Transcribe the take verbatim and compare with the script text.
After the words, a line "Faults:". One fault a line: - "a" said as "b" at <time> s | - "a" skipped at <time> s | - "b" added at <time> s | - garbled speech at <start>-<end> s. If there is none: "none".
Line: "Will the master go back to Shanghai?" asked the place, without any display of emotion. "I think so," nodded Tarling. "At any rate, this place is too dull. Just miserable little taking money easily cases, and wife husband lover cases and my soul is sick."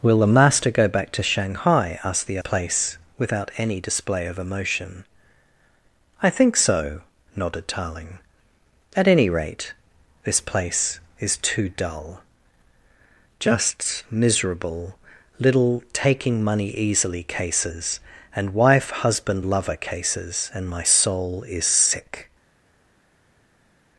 "Will the master go back to Shanghai?" asked the place, without any display of emotion. "I think so," nodded Tarling. "At any rate, this place is too dull. Just miserable little taking money easily cases, and wife husband lover cases and my soul is sick."
Faults:
none